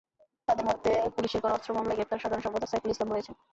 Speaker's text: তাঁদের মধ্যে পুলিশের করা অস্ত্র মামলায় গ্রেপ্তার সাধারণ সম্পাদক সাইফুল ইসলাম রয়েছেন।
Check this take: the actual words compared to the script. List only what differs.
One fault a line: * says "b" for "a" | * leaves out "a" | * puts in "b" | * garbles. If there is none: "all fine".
all fine